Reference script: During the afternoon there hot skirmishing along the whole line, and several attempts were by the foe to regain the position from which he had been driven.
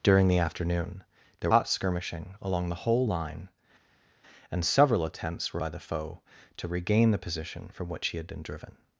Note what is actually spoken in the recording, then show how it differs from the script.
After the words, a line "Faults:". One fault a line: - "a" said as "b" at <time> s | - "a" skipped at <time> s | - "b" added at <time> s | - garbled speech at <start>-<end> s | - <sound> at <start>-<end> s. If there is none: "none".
During the afternoon there hot skirmishing along the whole line, and several attempts were by the foe to regain the position from which he had been driven.
Faults:
none